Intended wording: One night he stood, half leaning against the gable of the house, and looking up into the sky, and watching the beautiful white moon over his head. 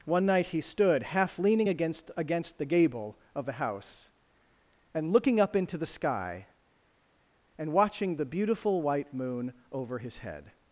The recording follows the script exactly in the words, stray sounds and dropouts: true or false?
false